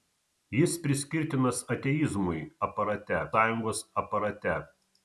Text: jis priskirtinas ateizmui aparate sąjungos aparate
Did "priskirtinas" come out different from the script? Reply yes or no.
no